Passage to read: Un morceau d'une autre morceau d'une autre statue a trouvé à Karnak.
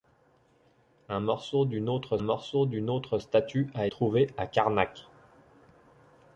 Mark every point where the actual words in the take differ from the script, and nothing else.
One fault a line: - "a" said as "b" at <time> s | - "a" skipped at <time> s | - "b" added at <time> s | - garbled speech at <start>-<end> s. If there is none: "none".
none